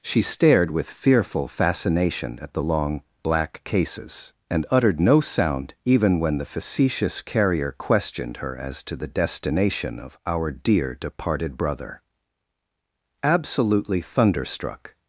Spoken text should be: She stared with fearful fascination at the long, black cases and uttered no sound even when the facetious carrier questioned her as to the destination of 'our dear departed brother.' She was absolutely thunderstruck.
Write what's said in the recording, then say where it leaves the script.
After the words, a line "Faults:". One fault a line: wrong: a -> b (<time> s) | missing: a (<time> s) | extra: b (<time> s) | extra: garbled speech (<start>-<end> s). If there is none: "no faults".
She stared with fearful fascination at the long, black cases and uttered no sound even when the facetious carrier questioned her as to the destination of 'our dear departed brother.' Absolutely thunderstruck.
Faults:
missing: She was (12.0 s)